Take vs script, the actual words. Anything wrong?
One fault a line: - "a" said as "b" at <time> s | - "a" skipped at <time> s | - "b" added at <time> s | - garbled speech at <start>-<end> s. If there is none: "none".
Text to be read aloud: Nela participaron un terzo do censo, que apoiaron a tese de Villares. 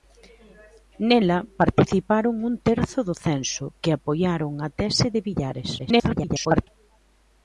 - garbled speech at 5.8-6.7 s